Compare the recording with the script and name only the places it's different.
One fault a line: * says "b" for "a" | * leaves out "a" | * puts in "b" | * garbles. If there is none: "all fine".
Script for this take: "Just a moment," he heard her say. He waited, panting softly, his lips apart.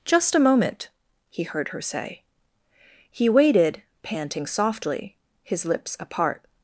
all fine